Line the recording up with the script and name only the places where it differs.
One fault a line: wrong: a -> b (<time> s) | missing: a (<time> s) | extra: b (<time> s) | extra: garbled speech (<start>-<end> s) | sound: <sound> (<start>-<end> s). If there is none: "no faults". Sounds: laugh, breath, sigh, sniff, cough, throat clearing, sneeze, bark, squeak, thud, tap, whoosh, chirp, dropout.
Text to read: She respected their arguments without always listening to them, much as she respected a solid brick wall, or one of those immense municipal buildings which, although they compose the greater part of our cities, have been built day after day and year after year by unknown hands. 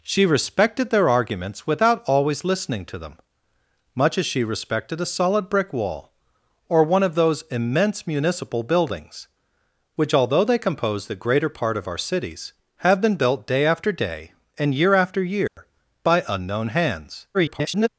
sound: dropout (15.5-15.6 s)
extra: garbled speech (17.3-17.9 s)